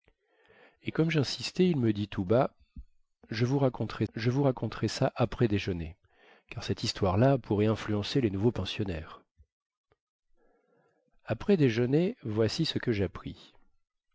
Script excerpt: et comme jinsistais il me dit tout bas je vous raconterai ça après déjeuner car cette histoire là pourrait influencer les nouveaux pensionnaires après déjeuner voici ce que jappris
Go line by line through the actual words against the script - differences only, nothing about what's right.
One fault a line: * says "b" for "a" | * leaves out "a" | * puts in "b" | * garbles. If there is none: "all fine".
* puts in "je vous raconterai"